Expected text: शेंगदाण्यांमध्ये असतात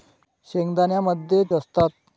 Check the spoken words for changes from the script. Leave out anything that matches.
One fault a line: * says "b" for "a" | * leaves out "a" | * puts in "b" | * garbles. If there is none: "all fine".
all fine